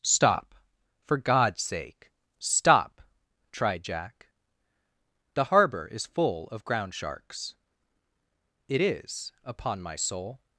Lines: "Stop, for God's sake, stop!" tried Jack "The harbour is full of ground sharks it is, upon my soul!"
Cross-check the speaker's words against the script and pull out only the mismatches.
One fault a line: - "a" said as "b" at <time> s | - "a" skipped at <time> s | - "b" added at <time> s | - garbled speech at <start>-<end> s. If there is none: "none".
none